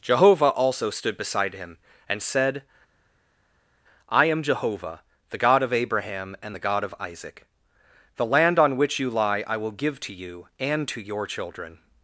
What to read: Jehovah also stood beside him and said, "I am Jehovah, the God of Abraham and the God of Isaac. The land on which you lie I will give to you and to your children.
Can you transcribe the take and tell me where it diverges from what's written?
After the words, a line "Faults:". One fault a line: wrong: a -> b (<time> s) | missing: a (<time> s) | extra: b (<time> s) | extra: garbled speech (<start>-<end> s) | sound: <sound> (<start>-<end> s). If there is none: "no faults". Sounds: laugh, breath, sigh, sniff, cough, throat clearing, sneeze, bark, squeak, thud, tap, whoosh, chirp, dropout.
Jehovah also stood beside him and said, "I am Jehovah, the God of Abraham and the God of Isaac. The land on which you lie I will give to you and to your children.
Faults:
no faults